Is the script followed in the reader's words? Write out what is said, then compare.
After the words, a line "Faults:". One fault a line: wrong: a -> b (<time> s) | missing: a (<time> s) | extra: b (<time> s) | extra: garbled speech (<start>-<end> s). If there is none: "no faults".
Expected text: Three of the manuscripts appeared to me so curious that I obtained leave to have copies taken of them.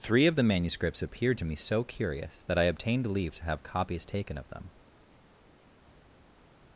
Three of the manuscripts appeared to me so curious that I obtained leave to have copies taken of them.
Faults:
no faults